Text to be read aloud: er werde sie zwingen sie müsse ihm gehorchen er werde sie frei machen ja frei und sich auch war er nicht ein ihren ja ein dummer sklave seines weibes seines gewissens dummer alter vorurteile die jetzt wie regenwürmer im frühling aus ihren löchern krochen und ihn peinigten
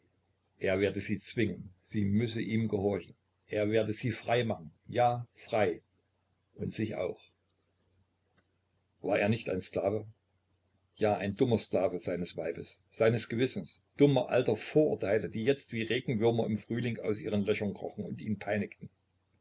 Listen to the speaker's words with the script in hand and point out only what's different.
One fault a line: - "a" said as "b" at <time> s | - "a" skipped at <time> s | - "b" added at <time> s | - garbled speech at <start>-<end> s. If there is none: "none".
- "ihren" said as "sklave" at 9.6 s